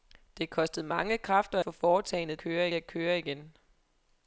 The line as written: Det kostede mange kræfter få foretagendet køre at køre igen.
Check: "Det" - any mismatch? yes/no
no